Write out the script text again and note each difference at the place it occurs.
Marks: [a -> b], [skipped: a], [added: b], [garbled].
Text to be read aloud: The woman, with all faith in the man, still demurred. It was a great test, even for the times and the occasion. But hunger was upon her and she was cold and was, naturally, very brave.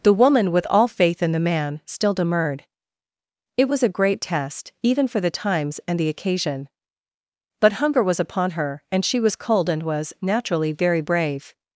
The woman, with all faith in the man, still demurred. It was a great test, even for the times and the occasion. But hunger was upon her and she was cold and was, naturally, very brave.